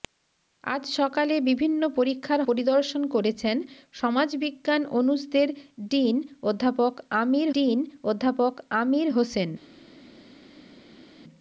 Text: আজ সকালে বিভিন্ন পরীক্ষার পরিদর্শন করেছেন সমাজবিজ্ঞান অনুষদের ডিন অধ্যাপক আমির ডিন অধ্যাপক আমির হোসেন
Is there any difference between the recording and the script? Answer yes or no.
no